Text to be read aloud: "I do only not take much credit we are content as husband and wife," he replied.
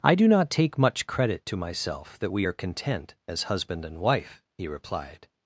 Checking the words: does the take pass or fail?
fail